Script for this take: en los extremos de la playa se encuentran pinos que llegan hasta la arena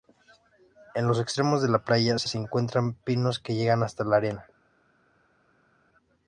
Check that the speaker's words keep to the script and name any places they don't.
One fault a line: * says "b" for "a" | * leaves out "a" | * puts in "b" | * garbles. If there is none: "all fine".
* puts in "se"